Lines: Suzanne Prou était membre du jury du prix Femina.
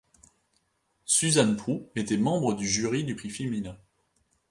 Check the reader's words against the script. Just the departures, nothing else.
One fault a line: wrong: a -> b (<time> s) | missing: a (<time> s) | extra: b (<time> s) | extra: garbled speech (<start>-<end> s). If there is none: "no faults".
no faults